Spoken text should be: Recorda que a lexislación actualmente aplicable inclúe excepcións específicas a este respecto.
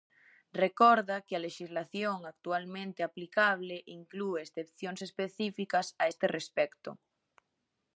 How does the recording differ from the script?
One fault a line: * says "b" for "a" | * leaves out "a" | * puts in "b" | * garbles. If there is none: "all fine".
all fine